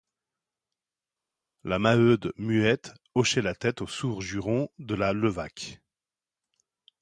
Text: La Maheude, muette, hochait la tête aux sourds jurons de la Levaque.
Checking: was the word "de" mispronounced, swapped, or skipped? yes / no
no